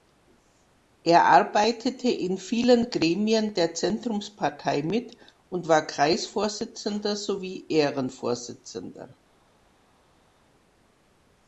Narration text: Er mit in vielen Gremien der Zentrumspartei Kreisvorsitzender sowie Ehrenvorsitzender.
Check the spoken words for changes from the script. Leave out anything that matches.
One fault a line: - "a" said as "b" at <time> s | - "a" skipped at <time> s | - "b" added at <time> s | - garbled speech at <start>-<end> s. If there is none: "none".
- "mit" said as "arbeitete" at 1.2 s
- "mit und war" added at 4.8 s